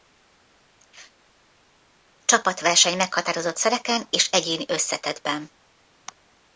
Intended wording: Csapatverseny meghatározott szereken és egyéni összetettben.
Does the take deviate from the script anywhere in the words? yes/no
no